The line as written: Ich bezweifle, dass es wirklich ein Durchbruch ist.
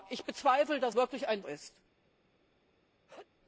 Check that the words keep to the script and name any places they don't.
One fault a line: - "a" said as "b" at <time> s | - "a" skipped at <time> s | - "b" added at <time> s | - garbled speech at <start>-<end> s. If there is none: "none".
- "es" skipped at 0.9 s
- "Durchbruch" skipped at 1.4 s